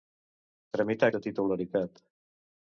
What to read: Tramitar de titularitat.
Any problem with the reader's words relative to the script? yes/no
no